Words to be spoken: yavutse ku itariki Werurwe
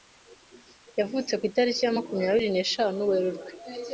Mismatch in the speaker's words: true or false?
true